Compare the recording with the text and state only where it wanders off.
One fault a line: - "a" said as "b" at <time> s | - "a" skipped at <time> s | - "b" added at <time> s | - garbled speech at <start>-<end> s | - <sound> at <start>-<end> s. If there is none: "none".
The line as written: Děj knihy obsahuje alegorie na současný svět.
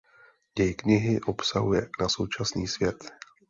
- "alegorie" skipped at 1.9 s